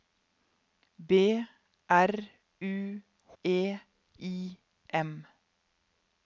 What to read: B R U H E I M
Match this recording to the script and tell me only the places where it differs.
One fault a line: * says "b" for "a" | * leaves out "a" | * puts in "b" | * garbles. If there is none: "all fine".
* leaves out "H"